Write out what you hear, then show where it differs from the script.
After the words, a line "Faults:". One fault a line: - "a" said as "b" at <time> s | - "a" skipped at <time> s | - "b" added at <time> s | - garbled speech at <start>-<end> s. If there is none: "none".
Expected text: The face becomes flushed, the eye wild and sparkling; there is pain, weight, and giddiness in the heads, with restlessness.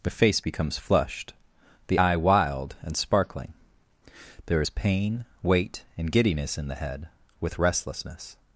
The face becomes flushed, the eye wild and sparkling; there is pain, weight, and giddiness in the head, with restlessness.
Faults:
- "heads" said as "head" at 6.7 s